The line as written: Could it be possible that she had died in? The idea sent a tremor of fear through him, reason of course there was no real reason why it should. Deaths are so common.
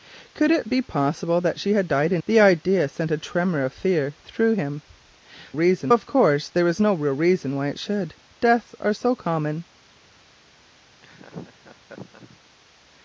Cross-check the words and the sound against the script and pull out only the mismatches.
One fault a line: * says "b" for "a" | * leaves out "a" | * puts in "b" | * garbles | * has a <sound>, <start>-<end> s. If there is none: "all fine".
* has a laugh, 11.0-12.4 s